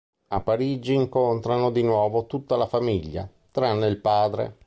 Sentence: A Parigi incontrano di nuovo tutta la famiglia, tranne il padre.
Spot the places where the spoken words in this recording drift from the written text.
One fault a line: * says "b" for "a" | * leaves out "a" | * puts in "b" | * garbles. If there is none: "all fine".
all fine